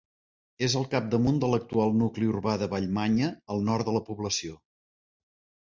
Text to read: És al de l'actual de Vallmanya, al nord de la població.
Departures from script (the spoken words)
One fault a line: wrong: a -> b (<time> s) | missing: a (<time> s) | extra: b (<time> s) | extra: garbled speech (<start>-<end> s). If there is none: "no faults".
extra: capdamunt (0.9 s)
extra: nucli urbà (2.0 s)